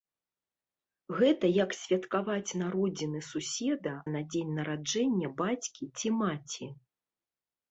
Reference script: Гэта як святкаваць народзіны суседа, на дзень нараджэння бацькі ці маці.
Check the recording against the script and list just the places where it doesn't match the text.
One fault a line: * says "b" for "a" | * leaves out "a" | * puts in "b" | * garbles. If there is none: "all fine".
all fine